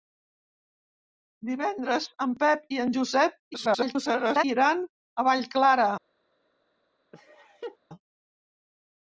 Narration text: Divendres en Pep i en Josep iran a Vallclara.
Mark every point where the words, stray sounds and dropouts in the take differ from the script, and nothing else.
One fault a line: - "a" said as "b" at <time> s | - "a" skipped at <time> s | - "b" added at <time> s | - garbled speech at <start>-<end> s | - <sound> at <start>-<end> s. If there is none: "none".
- garbled speech at 3.5-4.4 s
- laugh at 7.1-7.8 s